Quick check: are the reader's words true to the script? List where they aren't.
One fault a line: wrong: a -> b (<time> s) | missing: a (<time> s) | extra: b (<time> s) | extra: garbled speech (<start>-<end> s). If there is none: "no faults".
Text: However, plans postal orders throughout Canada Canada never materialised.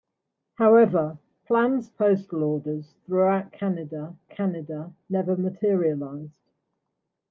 no faults